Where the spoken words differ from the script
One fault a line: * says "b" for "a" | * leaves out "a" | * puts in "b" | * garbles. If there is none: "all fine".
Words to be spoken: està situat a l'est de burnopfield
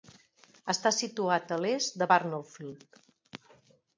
all fine